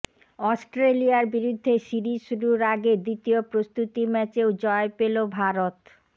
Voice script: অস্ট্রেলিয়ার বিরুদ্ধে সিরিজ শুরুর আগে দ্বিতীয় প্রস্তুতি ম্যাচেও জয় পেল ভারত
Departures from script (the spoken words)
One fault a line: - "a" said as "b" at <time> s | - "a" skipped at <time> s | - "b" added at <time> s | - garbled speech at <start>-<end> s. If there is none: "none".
none